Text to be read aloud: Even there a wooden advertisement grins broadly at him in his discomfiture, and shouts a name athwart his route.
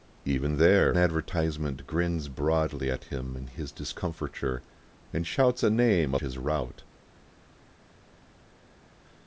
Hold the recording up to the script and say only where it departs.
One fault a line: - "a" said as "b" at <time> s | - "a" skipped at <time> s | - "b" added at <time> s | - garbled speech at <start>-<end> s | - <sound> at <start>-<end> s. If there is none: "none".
- "a wooden" skipped at 0.9 s
- "athwart" skipped at 6.2 s